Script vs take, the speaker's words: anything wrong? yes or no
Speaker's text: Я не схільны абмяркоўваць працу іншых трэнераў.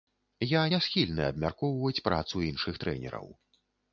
no